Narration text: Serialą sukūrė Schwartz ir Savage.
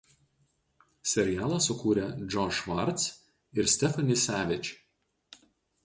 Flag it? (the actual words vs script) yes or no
yes